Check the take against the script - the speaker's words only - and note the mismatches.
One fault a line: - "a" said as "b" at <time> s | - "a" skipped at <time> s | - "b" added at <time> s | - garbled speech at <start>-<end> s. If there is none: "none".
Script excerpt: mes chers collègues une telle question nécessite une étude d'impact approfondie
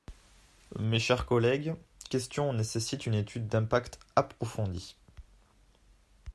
- "une telle" skipped at 1.8 s